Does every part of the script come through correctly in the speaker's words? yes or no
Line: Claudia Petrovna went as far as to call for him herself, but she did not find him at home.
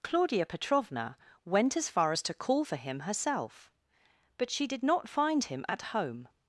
yes